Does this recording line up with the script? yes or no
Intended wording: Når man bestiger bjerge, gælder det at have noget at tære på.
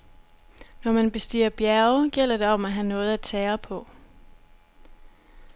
no